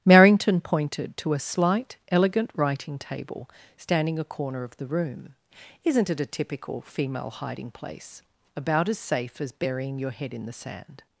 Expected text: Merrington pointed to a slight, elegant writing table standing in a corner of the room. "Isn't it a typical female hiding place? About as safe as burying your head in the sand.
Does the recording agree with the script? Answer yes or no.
no